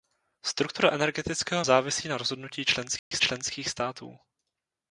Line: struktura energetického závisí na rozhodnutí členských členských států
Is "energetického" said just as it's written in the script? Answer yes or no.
yes